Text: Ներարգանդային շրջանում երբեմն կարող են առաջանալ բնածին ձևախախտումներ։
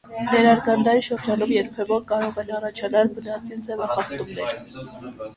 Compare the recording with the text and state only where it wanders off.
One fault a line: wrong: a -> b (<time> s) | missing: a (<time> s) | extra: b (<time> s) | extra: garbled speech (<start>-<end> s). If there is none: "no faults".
no faults